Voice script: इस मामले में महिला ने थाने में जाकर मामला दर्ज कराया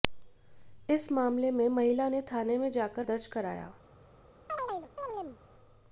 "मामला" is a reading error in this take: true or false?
true